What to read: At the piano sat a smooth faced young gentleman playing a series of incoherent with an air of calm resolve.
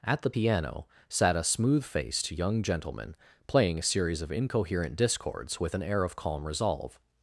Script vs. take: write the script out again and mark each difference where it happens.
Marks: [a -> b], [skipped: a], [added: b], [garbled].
At the piano sat a smooth faced young gentleman playing a series of incoherent [added: discords] with an air of calm resolve.